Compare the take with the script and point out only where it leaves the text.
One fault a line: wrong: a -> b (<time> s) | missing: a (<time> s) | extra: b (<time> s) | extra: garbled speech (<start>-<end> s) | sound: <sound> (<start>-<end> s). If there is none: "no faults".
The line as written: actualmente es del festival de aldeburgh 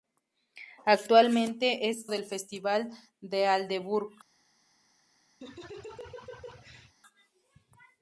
sound: laugh (5.4-7.0 s)